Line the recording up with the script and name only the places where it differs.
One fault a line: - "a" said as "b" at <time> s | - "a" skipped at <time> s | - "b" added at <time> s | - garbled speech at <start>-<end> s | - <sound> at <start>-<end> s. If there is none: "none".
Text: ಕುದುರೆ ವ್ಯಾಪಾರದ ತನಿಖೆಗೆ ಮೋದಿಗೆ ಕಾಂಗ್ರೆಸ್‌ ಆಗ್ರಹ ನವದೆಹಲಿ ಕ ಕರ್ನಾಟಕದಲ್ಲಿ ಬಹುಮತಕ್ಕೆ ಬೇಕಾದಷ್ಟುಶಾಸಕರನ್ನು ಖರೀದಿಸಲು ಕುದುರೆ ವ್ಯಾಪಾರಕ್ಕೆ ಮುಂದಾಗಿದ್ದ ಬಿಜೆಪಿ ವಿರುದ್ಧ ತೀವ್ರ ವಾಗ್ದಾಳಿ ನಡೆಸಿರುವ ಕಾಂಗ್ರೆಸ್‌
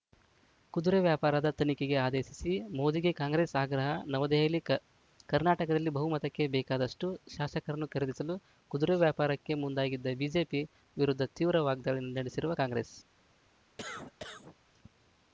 - "ಆದೇಶಿಸಿ" added at 2.0 s
- cough at 13.8-14.6 s